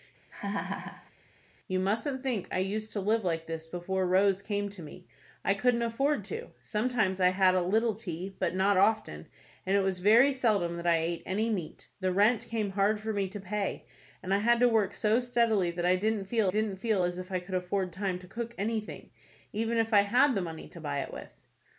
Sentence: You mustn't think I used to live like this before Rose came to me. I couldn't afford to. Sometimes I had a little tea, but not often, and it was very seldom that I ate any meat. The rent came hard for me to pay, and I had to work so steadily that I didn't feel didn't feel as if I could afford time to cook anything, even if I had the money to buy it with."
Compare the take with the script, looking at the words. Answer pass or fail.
pass